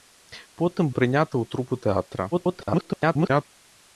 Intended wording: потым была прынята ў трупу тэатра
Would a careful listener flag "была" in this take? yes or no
yes